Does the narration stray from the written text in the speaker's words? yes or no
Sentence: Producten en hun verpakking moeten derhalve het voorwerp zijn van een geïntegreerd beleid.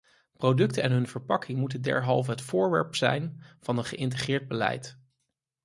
no